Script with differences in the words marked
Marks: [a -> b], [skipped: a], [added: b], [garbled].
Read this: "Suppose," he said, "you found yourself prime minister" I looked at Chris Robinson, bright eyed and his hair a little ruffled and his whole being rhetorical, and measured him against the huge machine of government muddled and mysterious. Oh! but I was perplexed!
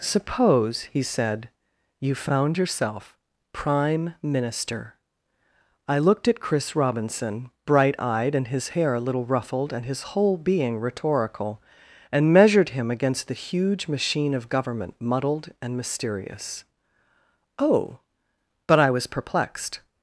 "Suppose," he said, "you found yourself prime minister" I looked at Chris Robinson, bright eyed and his hair a little ruffled and his whole being rhetorical, and measured him against the huge machine of government muddled and mysterious. Oh! but I was perplexed!